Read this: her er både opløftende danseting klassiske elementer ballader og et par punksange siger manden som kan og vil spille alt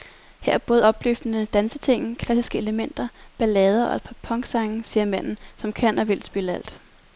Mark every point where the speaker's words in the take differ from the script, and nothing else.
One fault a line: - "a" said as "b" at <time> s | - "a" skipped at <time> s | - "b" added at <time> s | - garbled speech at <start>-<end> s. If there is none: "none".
none